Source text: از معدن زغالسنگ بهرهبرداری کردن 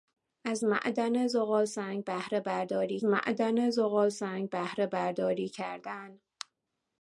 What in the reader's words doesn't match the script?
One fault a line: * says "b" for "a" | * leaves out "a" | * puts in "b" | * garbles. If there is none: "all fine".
* puts in "معدن زغالسنگ بهرهبرداری"